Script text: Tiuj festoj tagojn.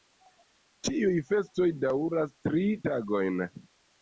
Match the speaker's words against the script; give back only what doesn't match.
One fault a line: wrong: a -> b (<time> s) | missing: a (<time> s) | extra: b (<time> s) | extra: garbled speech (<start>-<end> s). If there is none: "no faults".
extra: daŭras tri (1.8 s)